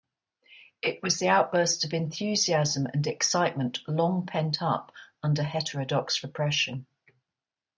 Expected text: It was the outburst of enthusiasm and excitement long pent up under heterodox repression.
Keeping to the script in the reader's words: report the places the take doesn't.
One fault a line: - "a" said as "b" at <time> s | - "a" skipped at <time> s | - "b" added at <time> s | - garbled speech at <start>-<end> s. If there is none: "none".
none